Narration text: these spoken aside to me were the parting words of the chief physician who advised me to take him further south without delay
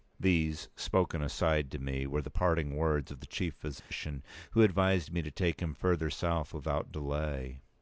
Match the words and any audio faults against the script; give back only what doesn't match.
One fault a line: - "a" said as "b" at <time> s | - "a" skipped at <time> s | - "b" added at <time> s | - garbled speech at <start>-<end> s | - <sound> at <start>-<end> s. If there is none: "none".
- dropout at 3.8-3.9 s